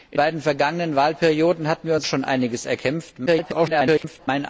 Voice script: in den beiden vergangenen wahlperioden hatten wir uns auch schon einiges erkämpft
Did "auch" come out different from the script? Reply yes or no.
yes